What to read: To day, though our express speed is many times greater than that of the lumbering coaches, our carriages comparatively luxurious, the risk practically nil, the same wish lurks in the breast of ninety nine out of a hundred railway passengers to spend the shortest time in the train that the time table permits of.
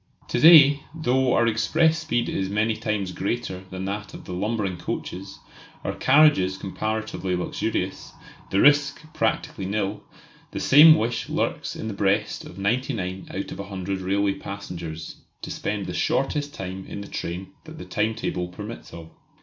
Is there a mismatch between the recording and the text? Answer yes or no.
no